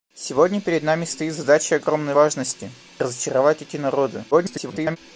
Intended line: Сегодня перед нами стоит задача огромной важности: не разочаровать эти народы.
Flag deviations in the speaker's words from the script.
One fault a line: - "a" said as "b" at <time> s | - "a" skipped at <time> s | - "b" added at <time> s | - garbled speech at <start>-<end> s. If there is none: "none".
- "не" skipped at 2.7 s
- garbled speech at 4.3-5.0 s